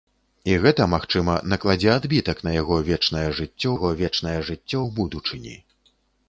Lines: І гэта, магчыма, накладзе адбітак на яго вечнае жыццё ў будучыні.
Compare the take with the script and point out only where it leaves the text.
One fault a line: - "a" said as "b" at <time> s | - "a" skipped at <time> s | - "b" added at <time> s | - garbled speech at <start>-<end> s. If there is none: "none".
- "яго вечнае жыццё" added at 3.7 s